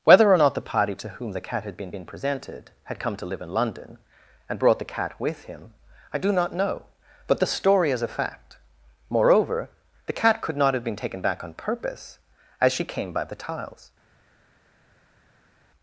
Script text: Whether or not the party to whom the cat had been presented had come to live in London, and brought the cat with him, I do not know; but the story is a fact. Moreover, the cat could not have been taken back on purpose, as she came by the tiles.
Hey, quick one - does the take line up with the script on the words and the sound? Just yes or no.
no